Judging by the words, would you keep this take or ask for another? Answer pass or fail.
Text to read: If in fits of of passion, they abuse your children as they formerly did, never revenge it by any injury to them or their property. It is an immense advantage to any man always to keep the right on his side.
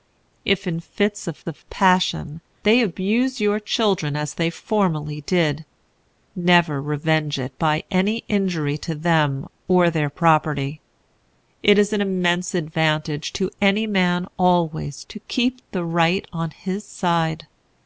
pass